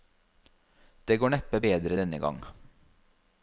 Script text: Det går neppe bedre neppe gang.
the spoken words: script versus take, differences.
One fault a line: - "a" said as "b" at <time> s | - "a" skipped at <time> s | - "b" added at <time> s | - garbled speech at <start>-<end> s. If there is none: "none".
- "neppe" said as "denne" at 1.9 s